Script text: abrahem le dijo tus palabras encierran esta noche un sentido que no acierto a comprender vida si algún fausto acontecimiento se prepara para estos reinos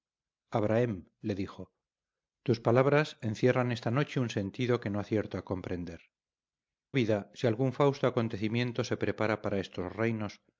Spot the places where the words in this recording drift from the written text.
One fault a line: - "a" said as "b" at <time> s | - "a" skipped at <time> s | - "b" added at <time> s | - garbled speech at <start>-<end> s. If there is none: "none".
none